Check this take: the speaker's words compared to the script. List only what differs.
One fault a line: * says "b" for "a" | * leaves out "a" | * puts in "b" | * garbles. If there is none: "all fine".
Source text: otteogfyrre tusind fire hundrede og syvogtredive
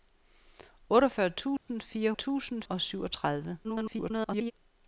* says "tusind" for "hundrede"
* garbles